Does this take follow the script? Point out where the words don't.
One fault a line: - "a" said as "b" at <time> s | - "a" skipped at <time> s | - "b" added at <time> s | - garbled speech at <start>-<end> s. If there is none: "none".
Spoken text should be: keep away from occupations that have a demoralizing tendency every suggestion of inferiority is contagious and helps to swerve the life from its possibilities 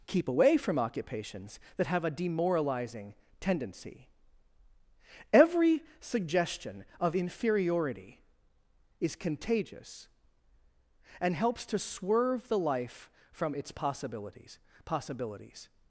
- "possibilities" added at 14.8 s